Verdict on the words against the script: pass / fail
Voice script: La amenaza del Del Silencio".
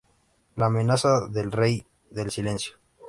fail